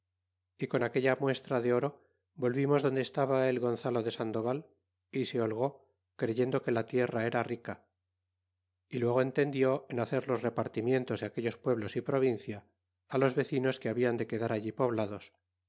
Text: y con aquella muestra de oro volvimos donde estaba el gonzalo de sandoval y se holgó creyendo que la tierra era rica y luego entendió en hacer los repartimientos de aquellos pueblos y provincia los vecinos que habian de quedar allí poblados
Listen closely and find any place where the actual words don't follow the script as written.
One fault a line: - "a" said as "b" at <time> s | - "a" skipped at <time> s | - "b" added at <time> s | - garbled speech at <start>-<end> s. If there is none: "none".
none